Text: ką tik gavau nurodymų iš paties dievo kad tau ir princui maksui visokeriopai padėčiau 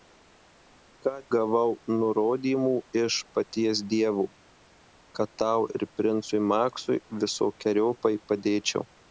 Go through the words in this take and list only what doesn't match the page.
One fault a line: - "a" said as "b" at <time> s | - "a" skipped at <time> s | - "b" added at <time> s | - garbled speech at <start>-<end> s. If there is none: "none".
- "tik" skipped at 1.1 s